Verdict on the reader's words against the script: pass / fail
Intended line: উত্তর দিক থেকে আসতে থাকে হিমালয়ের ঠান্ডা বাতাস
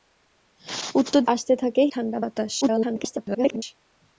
fail